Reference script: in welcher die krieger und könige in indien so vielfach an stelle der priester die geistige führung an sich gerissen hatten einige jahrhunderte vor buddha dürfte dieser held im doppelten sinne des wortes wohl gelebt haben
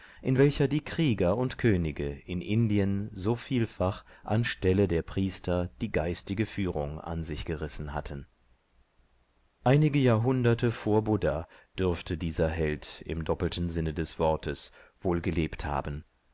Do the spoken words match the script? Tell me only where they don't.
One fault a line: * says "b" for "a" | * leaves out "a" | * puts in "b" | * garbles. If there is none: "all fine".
all fine